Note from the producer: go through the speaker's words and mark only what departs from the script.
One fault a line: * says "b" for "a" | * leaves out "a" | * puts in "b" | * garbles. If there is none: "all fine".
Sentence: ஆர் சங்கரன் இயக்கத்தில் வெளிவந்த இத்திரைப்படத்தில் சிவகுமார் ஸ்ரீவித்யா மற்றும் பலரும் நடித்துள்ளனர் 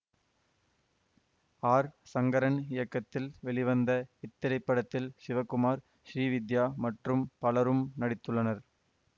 all fine